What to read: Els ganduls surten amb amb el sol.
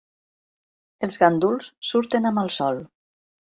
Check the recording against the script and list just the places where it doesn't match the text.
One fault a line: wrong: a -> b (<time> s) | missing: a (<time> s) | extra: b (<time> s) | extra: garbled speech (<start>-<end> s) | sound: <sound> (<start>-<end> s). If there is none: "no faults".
missing: amb (2.5 s)